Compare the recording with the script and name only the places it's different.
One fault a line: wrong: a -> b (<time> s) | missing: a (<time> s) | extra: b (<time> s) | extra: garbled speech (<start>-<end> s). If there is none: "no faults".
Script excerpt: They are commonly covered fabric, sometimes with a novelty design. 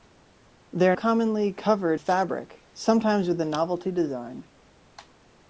no faults